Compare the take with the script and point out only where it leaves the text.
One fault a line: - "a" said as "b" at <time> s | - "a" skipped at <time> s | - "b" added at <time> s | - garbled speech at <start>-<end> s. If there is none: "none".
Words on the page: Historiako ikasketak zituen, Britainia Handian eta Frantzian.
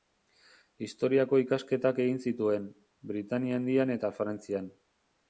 - "egin" added at 2.0 s